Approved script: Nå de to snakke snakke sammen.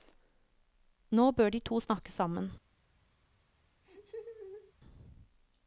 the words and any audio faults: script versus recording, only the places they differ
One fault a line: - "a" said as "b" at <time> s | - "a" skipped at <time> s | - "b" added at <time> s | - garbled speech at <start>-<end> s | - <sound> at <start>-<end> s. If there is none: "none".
- "bør" added at 1.3 s
- "snakke" skipped at 2.1 s
- laugh at 3.8-4.7 s